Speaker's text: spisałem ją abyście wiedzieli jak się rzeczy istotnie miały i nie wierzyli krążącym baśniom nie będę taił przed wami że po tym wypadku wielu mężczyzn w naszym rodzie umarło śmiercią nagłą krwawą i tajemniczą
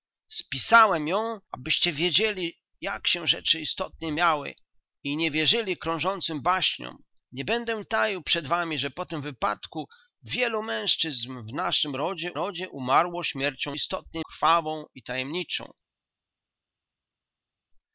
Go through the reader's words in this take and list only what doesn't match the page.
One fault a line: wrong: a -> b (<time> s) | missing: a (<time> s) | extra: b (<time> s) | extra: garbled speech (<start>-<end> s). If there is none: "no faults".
extra: rodzie (12.3 s)
wrong: nagłą -> istotnie (13.7 s)